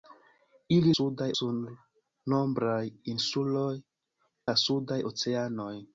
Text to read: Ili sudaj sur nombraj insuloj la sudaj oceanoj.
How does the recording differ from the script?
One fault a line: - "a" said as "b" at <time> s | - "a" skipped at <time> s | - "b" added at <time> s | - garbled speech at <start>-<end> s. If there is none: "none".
none